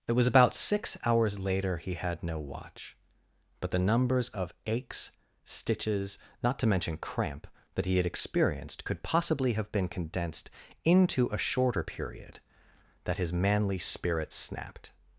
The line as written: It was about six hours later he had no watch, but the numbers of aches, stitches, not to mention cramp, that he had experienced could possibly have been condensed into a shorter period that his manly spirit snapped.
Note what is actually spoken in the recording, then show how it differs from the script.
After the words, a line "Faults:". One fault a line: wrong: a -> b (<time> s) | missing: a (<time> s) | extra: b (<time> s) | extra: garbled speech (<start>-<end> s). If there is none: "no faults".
It was about six hours later he had no watch, but the numbers of aches, stitches, not to mention cramp, that he had experienced could possibly have been condensed into a shorter period that his manly spirit snapped.
Faults:
no faults